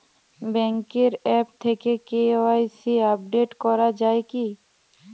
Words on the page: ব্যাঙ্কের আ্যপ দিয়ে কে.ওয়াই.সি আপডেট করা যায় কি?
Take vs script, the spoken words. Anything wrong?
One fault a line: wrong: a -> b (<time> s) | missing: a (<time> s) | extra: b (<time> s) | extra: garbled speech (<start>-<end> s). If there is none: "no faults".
wrong: দিয়ে -> থেকে (1.6 s)